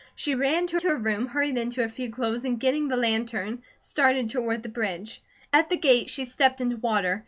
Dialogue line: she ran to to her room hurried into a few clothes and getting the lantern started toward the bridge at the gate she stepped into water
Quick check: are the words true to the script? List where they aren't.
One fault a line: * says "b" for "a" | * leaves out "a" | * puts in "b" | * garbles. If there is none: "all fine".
all fine